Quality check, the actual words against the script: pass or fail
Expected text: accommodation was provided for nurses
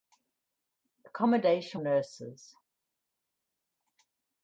fail